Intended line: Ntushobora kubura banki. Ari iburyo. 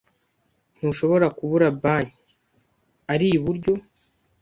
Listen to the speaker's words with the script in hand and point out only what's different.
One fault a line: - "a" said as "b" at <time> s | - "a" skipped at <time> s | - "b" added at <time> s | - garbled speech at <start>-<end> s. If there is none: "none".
none